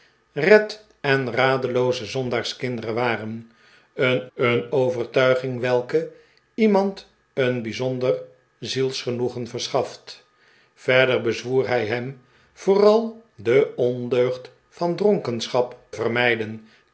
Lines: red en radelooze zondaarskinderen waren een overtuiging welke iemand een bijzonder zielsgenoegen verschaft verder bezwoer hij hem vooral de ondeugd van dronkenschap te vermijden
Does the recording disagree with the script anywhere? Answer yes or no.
yes